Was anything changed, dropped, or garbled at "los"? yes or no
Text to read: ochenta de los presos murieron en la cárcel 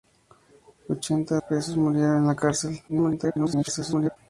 yes